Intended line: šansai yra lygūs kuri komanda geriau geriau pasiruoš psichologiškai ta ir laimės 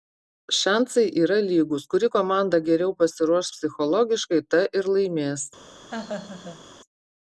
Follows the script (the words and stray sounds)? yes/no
no